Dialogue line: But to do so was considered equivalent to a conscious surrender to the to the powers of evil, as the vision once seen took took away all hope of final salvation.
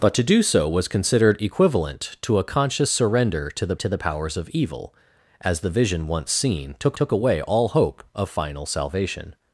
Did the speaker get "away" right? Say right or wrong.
right